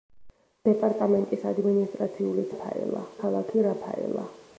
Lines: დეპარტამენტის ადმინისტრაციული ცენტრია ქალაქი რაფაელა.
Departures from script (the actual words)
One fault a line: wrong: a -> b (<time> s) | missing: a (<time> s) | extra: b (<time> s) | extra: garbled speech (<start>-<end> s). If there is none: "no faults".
wrong: ცენტრია -> რაფაელა (2.5 s)